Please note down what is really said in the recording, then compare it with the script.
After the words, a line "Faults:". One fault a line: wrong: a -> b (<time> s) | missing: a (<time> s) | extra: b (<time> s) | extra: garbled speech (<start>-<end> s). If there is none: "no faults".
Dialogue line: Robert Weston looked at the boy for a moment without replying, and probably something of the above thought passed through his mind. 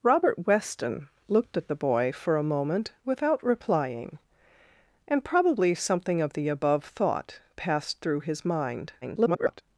Robert Weston looked at the boy for a moment without replying, and probably something of the above thought passed through his mind. [garbled]
Faults:
extra: garbled speech (9.0-9.6 s)